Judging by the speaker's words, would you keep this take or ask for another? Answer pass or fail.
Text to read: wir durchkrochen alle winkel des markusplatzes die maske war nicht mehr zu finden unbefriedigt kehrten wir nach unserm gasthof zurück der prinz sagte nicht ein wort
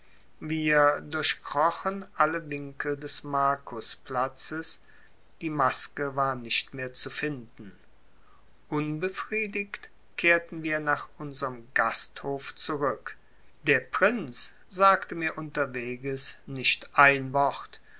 fail